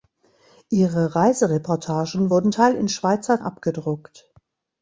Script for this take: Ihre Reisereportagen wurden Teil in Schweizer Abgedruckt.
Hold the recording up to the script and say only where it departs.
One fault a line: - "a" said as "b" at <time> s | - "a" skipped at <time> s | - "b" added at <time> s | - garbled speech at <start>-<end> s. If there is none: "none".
none